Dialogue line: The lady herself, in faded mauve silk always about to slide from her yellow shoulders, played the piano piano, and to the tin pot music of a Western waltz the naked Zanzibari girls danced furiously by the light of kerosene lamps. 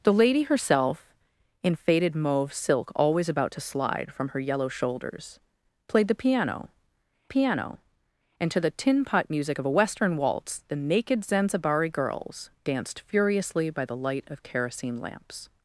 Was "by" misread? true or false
false